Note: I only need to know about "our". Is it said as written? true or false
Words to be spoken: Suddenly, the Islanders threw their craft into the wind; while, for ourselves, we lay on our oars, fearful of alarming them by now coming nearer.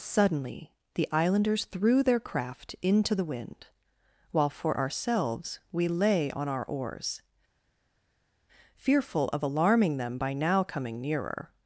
true